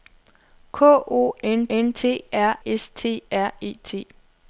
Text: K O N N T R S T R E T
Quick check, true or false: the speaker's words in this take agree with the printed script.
true